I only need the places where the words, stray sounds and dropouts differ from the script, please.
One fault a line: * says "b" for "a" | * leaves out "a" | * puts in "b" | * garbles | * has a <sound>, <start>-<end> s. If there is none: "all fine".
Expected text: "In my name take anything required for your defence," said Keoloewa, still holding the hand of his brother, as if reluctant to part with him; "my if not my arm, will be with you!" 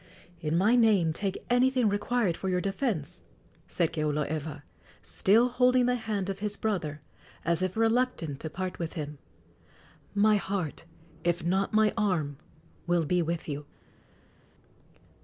* puts in "heart"